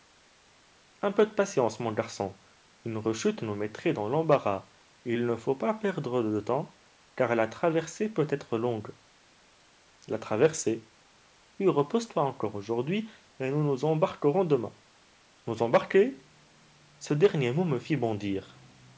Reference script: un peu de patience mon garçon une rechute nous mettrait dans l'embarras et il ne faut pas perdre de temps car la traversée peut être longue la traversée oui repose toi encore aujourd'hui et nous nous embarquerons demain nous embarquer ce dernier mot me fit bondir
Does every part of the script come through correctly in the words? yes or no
yes